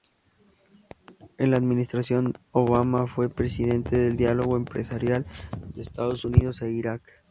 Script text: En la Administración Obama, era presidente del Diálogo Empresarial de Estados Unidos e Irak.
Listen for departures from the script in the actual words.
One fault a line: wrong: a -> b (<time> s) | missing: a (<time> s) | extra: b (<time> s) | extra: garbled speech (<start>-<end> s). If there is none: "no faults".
wrong: era -> fue (3.0 s)